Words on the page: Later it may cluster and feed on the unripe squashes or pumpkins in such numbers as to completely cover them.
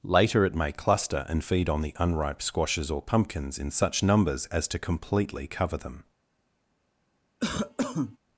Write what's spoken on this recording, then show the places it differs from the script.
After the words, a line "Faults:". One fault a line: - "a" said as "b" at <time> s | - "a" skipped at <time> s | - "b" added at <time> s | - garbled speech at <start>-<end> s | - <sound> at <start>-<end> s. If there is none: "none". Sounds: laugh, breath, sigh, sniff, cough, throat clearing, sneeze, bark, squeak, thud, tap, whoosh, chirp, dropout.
Later it may cluster and feed on the unripe squashes or pumpkins in such numbers as to completely cover them.
Faults:
- cough at 7.4-8.2 s